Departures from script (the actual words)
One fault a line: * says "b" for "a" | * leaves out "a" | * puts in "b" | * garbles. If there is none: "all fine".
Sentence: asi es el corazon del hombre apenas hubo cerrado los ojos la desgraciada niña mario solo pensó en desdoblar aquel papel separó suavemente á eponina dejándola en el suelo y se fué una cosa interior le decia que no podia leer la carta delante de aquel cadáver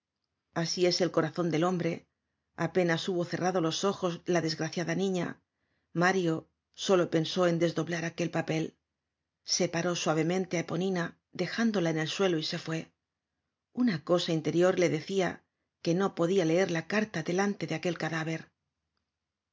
all fine